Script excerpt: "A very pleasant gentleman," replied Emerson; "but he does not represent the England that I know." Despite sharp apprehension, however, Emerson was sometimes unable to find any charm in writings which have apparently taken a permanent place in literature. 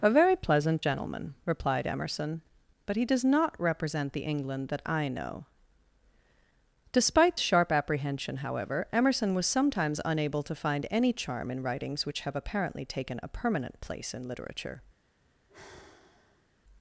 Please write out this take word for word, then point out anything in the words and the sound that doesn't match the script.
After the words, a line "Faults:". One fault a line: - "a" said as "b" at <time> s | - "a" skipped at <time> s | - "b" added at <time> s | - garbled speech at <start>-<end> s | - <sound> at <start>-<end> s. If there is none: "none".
"A very pleasant gentleman," replied Emerson; "but he does not represent the England that I know." Despite sharp apprehension, however, Emerson was sometimes unable to find any charm in writings which have apparently taken a permanent place in literature.
Faults:
- sigh at 15.5-16.5 s